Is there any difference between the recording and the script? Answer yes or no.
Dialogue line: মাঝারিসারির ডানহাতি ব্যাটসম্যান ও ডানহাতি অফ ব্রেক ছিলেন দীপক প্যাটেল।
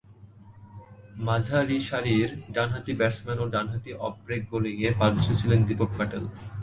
yes